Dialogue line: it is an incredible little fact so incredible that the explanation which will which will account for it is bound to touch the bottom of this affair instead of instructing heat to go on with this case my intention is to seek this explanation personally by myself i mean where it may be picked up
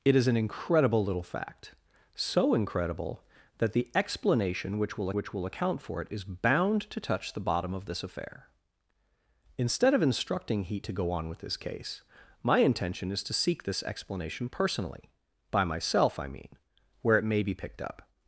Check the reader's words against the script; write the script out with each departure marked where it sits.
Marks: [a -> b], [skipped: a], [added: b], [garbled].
it is an incredible little fact so incredible that the explanation which will which will account for it is bound to touch the bottom of this affair instead of instructing heat to go on with this case my intention is to seek this explanation personally by myself i mean where it may be picked up